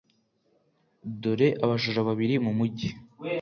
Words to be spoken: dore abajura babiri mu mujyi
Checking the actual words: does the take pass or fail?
pass